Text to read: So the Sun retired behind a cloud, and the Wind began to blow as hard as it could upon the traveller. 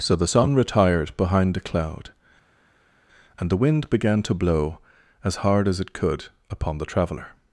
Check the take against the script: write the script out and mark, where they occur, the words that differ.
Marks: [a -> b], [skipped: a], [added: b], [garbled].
So the Sun retired behind a cloud, and the Wind began to blow as hard as it could upon the traveller.